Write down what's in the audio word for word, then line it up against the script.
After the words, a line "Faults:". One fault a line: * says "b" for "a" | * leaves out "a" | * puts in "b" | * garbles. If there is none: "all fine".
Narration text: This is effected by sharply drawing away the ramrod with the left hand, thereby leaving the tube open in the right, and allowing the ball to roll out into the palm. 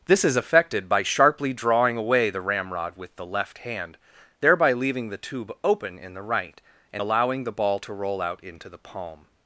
This is effected by sharply drawing away the ramrod with the left hand, thereby leaving the tube open in the right, and allowing the ball to roll out into the palm.
Faults:
all fine